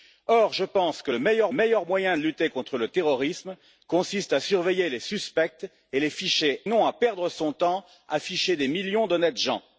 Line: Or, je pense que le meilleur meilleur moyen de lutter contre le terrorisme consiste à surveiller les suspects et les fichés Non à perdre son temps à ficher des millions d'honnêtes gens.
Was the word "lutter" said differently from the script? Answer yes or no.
no